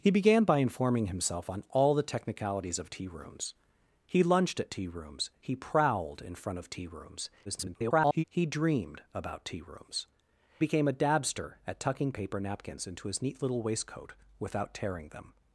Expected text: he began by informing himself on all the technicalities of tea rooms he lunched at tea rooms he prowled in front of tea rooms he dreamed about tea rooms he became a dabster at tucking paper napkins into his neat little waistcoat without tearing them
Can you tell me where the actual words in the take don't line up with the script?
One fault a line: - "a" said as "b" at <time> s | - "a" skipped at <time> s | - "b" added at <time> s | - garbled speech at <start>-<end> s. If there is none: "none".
- garbled speech at 7.4-8.2 s
- "he" skipped at 10.1 s